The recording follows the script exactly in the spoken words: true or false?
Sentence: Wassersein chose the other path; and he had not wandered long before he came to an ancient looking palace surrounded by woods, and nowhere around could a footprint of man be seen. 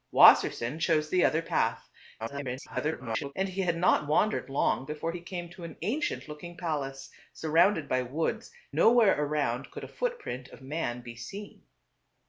false